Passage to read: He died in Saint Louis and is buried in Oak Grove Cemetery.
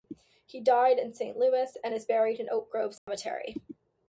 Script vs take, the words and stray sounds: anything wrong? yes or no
yes